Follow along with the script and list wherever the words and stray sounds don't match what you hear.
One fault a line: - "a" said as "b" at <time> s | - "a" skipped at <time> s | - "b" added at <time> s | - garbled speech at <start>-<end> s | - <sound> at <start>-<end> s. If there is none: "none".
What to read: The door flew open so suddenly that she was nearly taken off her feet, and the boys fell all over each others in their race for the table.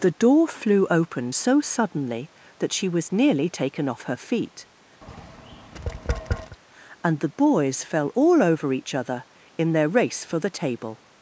- tap at 5.0-6.6 s
- "others" said as "other" at 8.9 s